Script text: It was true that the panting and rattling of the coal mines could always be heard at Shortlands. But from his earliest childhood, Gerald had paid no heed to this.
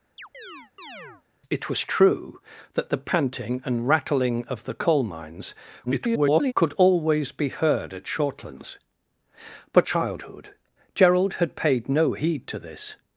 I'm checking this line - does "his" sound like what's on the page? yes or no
no